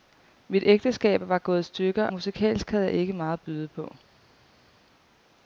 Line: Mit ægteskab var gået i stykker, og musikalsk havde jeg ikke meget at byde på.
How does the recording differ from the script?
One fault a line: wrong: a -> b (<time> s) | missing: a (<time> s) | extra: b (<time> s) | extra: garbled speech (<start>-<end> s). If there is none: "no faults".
missing: og (2.1 s)